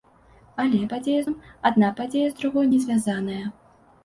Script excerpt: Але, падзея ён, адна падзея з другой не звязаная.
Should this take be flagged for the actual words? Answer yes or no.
no